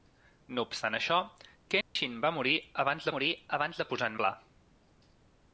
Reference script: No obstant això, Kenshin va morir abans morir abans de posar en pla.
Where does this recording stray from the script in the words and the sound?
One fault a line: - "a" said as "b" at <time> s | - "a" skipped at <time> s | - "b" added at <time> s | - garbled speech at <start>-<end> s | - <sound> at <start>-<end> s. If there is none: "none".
- dropout at 1.8-2.0 s